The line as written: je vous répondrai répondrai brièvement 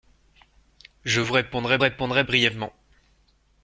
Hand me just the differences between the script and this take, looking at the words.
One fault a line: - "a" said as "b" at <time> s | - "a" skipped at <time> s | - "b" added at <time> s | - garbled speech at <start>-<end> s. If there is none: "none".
none